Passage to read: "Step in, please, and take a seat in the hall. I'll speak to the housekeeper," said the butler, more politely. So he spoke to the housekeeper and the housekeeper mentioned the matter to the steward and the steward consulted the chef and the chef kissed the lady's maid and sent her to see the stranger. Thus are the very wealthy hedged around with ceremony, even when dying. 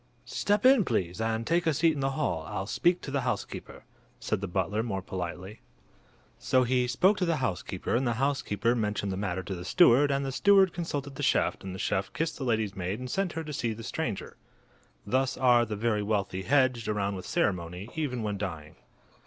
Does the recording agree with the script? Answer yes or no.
yes